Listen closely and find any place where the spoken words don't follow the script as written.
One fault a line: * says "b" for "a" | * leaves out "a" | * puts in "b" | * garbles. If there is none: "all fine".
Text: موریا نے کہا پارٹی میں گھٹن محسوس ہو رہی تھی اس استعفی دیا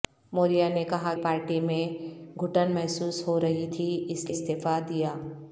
all fine